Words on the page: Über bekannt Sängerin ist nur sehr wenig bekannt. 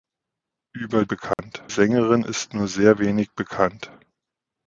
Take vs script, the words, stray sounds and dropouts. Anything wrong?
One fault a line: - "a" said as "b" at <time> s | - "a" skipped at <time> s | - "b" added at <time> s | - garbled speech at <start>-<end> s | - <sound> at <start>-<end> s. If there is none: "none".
- dropout at 1.3-1.4 s